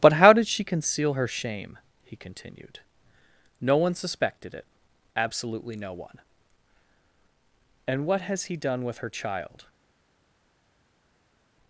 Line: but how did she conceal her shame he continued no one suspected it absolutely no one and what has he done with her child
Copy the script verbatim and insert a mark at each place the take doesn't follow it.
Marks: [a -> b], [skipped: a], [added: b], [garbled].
but how did she conceal her shame he continued no one suspected it absolutely no one and what has he done with her child